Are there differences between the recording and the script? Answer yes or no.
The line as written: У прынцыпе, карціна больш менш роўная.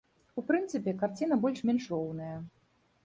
no